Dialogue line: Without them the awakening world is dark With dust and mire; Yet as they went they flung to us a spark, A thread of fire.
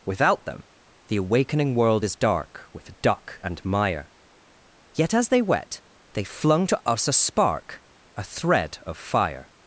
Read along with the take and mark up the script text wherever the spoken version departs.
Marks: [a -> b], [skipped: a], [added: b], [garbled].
Without them the awakening world is dark With [dust -> duck] and mire; Yet as they [went -> wet] they flung to us a spark, A thread of fire.